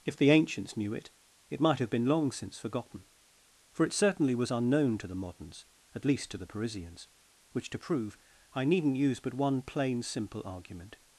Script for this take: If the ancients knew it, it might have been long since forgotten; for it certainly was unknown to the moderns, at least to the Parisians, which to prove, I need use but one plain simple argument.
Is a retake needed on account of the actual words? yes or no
yes